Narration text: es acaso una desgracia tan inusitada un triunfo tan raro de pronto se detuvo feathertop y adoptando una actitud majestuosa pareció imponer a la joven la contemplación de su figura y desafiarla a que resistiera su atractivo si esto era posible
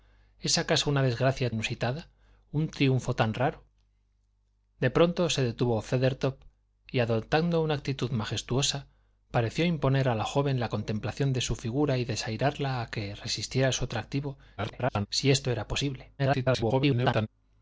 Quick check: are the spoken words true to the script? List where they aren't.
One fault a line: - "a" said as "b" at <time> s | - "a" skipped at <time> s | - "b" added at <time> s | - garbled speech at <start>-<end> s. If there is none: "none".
- "tan" skipped at 1.5 s
- garbled speech at 14.6-15.1 s
- garbled speech at 16.2-17.3 s